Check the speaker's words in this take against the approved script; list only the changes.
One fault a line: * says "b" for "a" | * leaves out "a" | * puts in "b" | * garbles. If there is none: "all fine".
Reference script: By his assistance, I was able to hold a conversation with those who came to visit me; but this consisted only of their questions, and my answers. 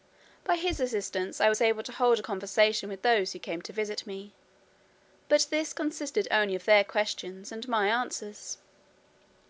all fine